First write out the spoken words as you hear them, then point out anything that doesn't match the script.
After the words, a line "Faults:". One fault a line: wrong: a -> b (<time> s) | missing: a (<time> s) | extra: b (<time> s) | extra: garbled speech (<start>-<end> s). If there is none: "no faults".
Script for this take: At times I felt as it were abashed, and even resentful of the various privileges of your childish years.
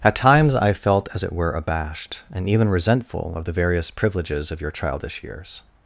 At times I felt as it were abashed, and even resentful of the various privileges of your childish years.
Faults:
no faults